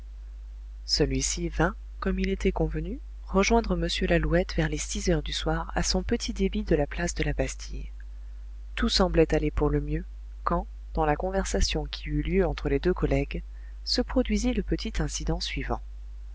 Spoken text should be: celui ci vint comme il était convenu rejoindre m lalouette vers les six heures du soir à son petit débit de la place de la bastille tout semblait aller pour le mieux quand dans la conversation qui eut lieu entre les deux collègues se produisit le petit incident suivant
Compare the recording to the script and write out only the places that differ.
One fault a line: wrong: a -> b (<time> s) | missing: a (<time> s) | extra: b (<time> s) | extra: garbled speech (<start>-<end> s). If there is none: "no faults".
no faults